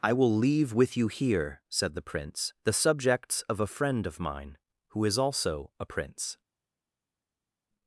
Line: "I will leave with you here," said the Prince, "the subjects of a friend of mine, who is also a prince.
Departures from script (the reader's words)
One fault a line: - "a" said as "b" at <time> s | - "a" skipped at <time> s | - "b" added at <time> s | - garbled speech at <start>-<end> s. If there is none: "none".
none